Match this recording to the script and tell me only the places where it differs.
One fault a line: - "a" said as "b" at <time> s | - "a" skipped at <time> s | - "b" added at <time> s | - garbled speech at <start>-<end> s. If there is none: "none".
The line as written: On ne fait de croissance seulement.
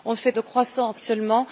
none